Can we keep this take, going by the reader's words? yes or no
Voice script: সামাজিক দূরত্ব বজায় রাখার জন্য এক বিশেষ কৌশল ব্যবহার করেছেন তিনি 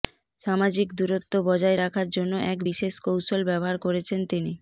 yes